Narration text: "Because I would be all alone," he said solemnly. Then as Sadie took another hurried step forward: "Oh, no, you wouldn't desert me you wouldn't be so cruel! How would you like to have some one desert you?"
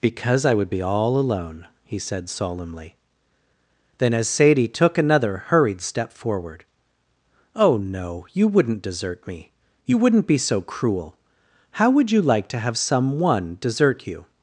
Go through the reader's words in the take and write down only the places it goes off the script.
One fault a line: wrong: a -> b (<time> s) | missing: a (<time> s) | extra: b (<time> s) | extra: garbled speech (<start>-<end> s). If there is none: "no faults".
no faults